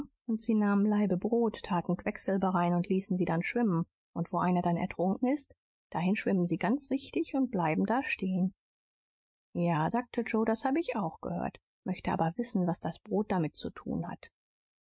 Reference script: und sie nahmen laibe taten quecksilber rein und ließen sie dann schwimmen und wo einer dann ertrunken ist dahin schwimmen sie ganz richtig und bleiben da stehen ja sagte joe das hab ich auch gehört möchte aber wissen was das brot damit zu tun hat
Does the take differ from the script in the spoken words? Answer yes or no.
yes